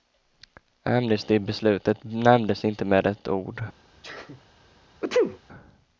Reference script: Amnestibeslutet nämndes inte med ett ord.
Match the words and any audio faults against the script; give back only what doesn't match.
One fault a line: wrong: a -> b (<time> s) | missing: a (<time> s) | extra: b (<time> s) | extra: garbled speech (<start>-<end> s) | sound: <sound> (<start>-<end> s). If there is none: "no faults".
sound: sneeze (4.0-4.4 s)
sound: sneeze (5.0-5.4 s)